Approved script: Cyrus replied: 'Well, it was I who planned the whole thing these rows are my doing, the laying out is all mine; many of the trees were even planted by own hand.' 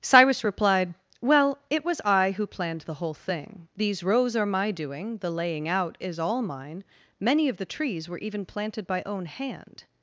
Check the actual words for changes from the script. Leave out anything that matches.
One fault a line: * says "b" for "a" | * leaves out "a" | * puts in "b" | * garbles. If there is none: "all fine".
all fine